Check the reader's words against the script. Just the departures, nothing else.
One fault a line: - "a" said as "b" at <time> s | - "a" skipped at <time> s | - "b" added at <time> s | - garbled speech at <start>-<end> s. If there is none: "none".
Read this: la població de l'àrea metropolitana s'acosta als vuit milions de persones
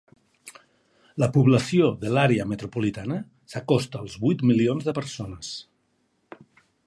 none